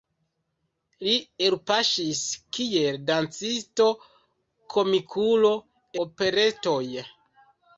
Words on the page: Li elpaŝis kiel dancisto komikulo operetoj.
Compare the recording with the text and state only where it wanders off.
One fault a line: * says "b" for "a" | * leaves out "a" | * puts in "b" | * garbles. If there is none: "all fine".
all fine